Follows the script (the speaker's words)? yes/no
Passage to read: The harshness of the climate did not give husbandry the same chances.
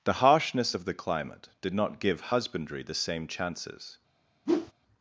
yes